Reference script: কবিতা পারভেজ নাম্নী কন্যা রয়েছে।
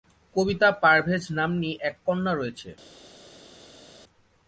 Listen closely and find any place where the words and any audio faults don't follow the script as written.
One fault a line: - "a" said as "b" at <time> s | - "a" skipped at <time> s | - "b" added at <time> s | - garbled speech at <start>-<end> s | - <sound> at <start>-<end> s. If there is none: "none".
- "এক" added at 1.8 s